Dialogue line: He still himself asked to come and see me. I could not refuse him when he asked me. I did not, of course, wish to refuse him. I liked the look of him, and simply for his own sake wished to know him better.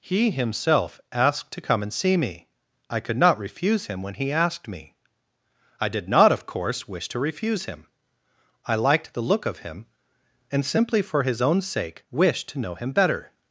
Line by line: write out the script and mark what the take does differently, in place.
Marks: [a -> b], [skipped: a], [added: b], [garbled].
He [skipped: still] himself asked to come and see me. I could not refuse him when he asked me. I did not, of course, wish to refuse him. I liked the look of him, and simply for his own sake wished to know him better.